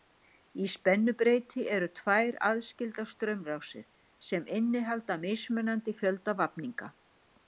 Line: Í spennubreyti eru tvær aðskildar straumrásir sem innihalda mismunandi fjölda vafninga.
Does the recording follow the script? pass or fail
pass